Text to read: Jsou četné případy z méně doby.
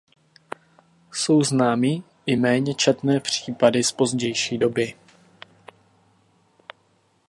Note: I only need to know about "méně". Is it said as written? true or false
false